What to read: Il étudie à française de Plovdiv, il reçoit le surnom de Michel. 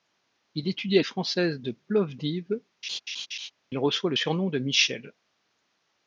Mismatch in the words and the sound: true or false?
true